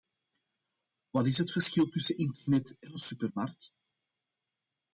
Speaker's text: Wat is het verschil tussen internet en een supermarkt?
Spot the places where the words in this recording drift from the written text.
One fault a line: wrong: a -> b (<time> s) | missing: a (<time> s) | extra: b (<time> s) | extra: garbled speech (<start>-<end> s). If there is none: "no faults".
no faults